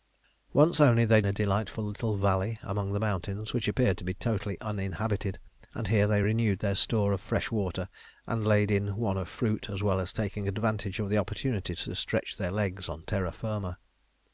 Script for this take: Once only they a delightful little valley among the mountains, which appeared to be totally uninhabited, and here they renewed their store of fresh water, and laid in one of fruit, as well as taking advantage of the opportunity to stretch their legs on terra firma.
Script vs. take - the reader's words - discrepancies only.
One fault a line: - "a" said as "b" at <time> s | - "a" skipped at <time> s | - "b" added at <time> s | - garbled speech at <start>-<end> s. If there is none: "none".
none